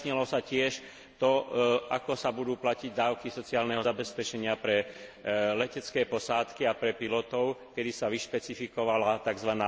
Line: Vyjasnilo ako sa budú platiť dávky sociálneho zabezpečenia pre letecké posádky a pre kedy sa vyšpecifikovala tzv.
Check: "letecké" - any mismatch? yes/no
no